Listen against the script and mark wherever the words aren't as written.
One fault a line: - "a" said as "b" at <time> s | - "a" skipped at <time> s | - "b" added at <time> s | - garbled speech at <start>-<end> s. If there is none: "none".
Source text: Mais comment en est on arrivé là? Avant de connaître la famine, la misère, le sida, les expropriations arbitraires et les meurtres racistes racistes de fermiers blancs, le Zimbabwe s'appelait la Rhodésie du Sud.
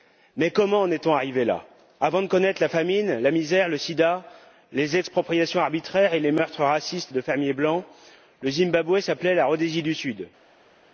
- "racistes" skipped at 7.1 s